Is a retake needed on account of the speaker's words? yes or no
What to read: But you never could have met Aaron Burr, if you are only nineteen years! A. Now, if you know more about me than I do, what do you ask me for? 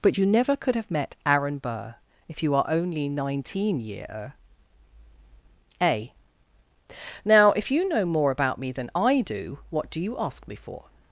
yes